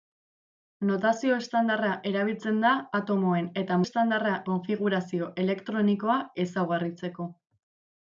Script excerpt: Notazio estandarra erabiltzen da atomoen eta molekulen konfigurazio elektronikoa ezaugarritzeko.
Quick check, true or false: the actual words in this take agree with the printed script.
false